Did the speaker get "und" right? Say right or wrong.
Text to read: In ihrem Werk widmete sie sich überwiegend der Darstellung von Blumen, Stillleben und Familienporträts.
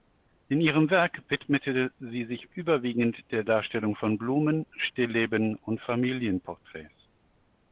right